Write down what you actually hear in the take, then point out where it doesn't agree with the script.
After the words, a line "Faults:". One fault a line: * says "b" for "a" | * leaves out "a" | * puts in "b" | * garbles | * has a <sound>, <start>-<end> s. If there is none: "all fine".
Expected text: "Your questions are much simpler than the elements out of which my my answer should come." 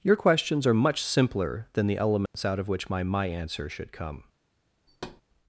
"Your questions are much simpler than the elements out of which my my answer should come."
Faults:
* has a dropout, 2.3-2.3 s
* has a thud, 4.9-5.2 s